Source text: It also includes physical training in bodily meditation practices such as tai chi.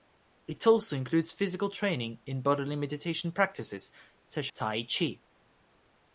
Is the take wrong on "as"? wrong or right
wrong